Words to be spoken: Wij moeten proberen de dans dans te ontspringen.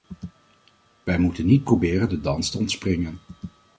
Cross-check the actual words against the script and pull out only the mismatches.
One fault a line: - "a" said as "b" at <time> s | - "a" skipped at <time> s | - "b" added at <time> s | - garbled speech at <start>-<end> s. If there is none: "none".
- "niet" added at 1.4 s
- "dans" skipped at 2.5 s